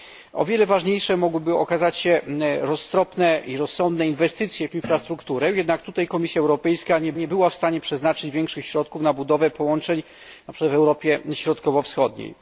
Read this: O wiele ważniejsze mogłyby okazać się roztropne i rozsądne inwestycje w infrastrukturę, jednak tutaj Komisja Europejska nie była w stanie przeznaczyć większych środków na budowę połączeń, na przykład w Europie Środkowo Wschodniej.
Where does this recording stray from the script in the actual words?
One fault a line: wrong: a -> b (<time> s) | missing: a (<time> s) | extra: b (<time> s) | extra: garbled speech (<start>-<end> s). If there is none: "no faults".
extra: nie (7.1 s)